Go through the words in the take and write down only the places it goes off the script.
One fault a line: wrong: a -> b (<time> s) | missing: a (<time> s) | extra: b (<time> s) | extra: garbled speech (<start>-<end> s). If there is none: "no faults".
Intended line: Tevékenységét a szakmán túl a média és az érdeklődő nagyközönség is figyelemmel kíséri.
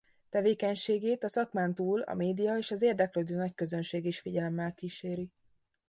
no faults